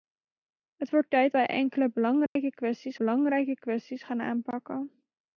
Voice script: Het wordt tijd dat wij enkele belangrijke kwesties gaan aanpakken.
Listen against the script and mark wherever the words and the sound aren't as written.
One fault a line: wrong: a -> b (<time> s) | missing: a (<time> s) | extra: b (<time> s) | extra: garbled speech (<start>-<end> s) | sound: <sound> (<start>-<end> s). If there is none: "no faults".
missing: dat (1.3 s)
sound: dropout (2.3-2.4 s)
extra: belangrijke kwesties (3.0 s)